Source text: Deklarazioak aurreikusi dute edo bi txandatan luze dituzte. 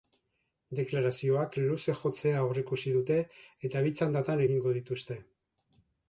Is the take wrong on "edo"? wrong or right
wrong